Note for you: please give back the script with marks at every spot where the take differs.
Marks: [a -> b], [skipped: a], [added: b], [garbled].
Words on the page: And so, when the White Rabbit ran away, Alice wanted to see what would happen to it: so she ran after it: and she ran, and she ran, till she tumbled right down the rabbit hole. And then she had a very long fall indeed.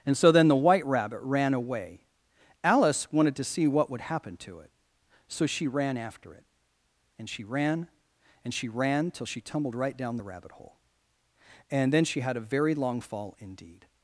And so, [when -> then] the White Rabbit ran away, Alice wanted to see what would happen to it: so she ran after it: and she ran, and she ran, till she tumbled right down the rabbit hole. And then she had a very long fall indeed.